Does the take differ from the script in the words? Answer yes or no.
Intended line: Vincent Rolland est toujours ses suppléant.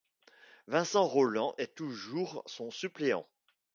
yes